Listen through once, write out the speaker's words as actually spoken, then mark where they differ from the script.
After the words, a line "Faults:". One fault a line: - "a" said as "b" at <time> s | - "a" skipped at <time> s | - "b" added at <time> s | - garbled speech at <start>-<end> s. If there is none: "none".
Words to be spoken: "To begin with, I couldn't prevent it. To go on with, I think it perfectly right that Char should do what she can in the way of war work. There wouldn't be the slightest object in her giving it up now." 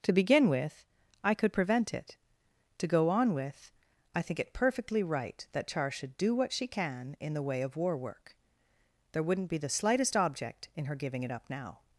"To begin with, I could prevent it. To go on with, I think it perfectly right that Char should do what she can in the way of war work. There wouldn't be the slightest object in her giving it up now."
Faults:
- "couldn't" said as "could" at 1.3 s